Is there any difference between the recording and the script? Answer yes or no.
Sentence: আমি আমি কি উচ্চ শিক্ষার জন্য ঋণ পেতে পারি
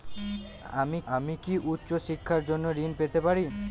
no